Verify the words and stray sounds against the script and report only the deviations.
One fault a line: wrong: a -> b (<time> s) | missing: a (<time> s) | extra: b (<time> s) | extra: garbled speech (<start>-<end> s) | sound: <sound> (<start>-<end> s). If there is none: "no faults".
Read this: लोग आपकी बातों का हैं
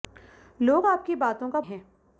no faults